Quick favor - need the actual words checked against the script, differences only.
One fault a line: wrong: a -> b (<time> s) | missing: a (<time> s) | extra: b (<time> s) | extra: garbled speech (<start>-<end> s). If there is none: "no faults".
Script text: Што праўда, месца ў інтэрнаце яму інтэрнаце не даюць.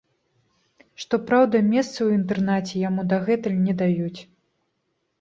wrong: інтэрнаце -> дагэтуль (3.1 s)